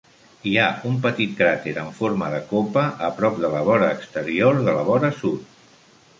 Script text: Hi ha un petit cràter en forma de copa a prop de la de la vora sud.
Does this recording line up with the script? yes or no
no